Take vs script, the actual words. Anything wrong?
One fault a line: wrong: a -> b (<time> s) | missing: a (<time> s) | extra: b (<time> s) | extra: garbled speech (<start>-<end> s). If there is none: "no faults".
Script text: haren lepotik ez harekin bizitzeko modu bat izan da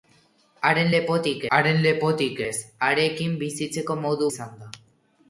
extra: haren lepotik (1.6 s)
missing: bat (4.3 s)